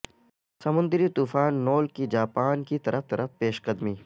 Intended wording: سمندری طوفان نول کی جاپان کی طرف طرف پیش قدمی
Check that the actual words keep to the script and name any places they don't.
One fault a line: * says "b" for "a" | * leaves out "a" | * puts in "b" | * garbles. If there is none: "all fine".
all fine